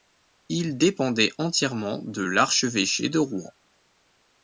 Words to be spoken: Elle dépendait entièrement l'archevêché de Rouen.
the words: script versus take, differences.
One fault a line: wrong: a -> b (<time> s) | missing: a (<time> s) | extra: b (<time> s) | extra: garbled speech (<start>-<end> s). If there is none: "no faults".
wrong: Elle -> Il (0.5 s)
extra: de (2.0 s)